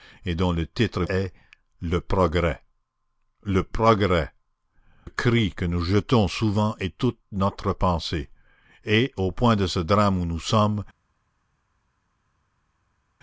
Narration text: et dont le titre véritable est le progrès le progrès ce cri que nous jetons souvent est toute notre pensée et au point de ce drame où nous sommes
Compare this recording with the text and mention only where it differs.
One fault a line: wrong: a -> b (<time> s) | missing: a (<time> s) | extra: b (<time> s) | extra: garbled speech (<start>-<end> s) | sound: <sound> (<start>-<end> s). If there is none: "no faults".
missing: véritable (1.0 s)
missing: ce (4.3 s)